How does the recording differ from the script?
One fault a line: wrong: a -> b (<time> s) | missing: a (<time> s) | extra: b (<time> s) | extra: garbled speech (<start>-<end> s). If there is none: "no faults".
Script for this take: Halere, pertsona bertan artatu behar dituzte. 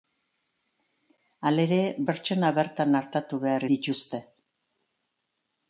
no faults